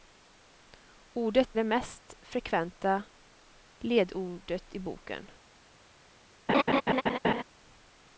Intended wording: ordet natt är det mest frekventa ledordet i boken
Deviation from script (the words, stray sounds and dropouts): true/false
true